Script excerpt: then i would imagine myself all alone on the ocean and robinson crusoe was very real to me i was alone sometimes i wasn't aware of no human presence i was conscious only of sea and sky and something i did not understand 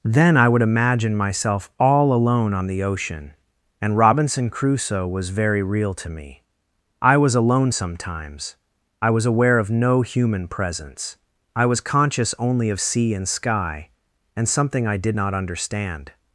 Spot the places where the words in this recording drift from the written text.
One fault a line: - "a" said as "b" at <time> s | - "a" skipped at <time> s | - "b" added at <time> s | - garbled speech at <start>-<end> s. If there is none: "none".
- "wasn't" said as "was" at 9.1 s